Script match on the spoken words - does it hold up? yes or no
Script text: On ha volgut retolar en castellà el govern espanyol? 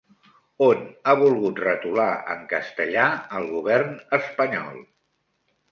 yes